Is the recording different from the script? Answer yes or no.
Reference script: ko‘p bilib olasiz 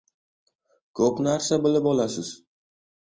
yes